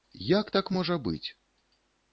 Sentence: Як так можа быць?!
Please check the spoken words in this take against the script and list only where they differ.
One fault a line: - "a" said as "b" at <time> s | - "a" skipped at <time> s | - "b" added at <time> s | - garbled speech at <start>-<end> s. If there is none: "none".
none